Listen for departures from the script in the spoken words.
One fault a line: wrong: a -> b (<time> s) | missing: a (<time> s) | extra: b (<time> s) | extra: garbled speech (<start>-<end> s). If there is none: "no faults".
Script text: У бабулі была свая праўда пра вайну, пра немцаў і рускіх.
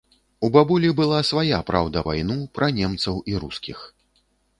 missing: пра (2.0 s)